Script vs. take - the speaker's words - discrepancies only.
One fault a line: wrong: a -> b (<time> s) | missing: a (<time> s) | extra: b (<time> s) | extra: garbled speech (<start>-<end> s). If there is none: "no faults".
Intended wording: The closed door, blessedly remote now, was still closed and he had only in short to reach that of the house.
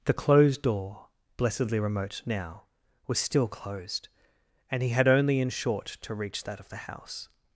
no faults